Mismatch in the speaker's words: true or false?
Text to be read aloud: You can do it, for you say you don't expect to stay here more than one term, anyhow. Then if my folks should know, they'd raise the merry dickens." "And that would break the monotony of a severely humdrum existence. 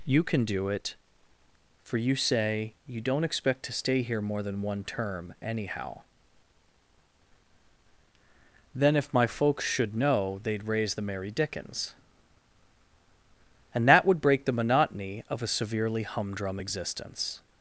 false